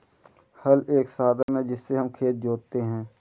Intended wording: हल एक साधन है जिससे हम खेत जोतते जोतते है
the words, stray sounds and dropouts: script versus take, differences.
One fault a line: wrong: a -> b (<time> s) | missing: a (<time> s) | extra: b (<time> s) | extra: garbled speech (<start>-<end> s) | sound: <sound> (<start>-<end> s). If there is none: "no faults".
sound: dropout (1.4-1.5 s)
missing: जोतते (2.8 s)